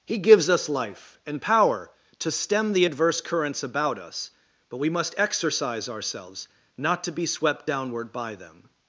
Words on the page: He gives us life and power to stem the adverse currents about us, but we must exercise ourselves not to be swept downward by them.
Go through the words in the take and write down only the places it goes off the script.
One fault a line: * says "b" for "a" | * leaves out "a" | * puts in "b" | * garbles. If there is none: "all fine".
all fine